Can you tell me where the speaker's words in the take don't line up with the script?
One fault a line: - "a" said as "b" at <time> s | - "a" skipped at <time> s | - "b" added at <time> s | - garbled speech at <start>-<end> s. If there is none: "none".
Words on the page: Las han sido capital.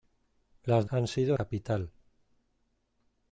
none